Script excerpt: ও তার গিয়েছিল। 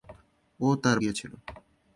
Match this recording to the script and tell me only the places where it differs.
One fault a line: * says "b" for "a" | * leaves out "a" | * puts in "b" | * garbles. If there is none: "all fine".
all fine